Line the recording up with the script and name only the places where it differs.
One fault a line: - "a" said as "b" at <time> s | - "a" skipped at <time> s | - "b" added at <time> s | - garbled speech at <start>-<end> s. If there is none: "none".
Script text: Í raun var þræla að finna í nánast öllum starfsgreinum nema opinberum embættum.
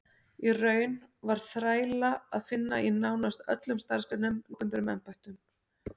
- "nema" skipped at 4.4 s